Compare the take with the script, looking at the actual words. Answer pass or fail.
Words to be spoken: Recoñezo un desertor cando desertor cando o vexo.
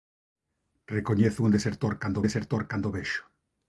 pass